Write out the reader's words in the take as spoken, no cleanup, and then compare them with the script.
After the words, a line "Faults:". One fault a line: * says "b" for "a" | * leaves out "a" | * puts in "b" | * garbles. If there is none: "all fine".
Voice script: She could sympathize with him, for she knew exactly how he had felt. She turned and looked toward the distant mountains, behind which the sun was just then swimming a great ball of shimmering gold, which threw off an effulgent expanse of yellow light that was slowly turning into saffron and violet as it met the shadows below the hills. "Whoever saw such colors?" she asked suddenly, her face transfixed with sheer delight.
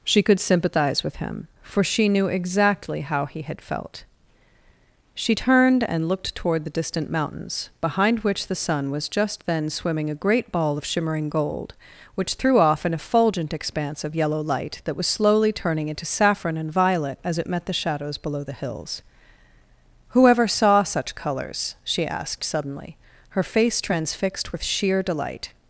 She could sympathize with him, for she knew exactly how he had felt. She turned and looked toward the distant mountains, behind which the sun was just then swimming a great ball of shimmering gold, which threw off an effulgent expanse of yellow light that was slowly turning into saffron and violet as it met the shadows below the hills. "Whoever saw such colors?" she asked suddenly, her face transfixed with sheer delight.
Faults:
all fine